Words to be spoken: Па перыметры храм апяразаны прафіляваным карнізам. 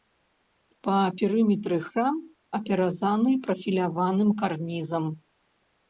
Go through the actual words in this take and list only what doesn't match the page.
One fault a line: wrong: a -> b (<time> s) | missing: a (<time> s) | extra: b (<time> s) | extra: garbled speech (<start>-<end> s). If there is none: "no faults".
no faults